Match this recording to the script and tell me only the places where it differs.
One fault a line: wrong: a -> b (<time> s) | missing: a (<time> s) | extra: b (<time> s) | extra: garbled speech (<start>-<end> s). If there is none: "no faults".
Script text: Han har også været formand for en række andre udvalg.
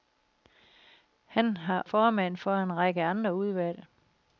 missing: også været (1.9 s)